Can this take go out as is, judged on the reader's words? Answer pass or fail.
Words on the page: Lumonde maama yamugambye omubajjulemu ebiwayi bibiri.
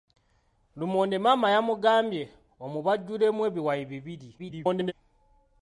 fail